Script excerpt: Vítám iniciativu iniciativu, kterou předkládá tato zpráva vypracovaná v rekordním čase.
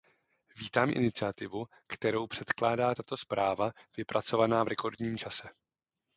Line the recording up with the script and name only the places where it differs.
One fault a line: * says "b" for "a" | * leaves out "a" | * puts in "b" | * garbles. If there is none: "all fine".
* leaves out "iniciativu"